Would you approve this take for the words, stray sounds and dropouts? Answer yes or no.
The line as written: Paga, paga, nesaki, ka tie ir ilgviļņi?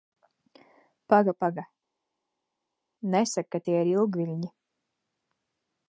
yes